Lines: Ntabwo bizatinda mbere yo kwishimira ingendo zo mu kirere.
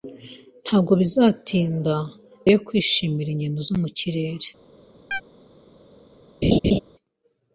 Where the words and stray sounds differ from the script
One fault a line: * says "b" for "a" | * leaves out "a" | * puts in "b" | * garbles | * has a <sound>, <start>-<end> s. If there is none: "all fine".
* leaves out "mbere"
* has a chirp, 5.1-5.2 s
* has a laugh, 6.4-6.8 s